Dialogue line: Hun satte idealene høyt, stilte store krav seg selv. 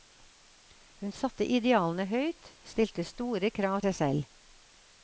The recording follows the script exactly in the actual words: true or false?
true